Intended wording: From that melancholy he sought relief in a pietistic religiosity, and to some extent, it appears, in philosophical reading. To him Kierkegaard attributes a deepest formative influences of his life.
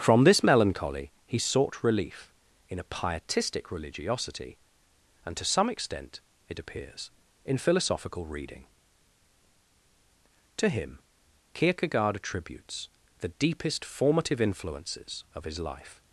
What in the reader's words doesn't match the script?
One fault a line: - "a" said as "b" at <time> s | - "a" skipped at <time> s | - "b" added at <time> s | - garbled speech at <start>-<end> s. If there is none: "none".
- "that" said as "this" at 0.2 s
- "a" said as "the" at 13.2 s